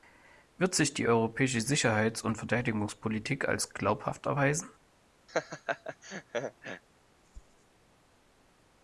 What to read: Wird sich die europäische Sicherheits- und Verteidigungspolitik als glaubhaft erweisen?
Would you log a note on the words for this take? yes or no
no